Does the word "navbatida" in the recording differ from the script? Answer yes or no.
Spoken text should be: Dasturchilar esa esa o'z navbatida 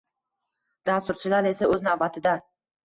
no